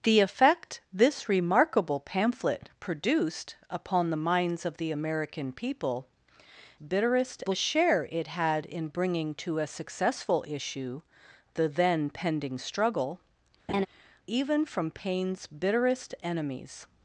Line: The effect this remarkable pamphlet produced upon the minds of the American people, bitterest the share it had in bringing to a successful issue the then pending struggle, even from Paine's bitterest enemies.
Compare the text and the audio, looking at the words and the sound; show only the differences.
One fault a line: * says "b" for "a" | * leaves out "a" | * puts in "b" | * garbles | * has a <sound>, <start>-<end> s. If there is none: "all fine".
* has a laugh, 13.7-13.9 s